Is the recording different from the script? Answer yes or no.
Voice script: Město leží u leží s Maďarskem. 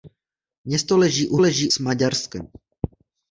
no